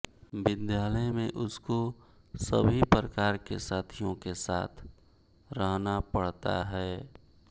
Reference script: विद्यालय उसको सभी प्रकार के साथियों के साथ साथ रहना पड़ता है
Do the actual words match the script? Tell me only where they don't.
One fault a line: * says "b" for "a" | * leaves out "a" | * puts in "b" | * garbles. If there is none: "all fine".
* puts in "में"
* leaves out "साथ"